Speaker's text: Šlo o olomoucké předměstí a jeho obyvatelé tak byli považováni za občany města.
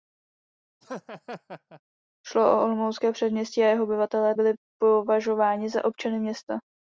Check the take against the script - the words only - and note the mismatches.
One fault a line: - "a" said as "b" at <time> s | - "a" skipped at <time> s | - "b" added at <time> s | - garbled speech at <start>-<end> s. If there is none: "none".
- "tak" skipped at 4.3 s